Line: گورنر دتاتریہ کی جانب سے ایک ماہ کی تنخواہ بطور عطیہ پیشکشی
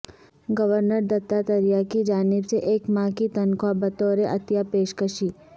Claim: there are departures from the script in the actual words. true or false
false